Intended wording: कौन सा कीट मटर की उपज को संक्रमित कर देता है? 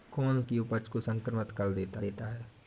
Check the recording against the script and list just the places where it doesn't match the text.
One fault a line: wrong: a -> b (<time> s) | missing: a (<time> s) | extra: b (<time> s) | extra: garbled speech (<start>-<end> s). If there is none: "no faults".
missing: सा कीट मटर (0.4 s)
extra: देता (2.0 s)